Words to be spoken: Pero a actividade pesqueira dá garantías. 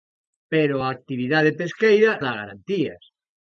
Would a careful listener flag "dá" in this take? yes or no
no